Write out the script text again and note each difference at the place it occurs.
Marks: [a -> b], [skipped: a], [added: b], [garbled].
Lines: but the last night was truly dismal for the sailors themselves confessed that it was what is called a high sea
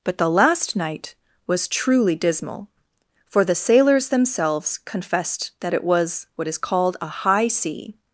but the last night was truly dismal for the sailors themselves confessed that it was what is called a high sea